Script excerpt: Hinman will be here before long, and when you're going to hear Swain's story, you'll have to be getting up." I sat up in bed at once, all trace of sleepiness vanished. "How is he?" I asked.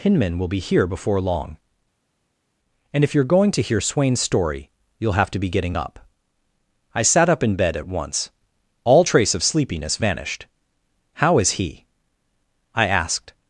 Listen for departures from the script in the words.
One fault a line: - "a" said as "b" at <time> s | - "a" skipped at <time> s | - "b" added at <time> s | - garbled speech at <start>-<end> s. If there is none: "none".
- "when" said as "if" at 3.0 s